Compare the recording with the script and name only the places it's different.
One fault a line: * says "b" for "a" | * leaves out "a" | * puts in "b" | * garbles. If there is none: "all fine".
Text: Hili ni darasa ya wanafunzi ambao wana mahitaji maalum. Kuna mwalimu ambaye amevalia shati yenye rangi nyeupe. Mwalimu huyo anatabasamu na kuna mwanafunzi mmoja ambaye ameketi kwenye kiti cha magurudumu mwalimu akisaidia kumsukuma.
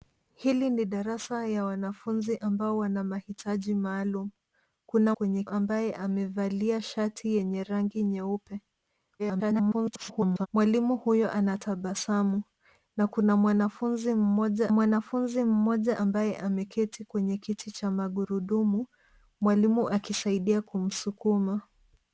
* says "kwenye" for "mwalimu"
* garbles
* puts in "mwanafunzi mmoja"